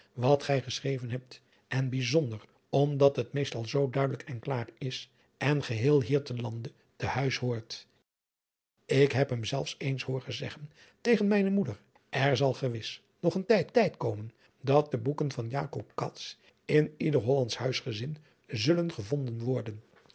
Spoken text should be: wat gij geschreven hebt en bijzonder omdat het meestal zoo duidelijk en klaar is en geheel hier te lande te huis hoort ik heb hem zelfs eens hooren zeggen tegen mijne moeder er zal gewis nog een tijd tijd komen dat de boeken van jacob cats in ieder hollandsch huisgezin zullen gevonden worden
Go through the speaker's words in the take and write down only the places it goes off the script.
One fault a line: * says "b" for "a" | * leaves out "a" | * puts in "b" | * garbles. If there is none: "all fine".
all fine